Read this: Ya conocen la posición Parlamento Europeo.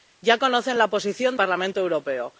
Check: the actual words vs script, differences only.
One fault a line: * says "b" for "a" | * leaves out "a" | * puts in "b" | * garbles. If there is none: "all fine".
all fine